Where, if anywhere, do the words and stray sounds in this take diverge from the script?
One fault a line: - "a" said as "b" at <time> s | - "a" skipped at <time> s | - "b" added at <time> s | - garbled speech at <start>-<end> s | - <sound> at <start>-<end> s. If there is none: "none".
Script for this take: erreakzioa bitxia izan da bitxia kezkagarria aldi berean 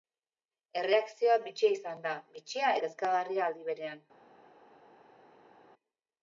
none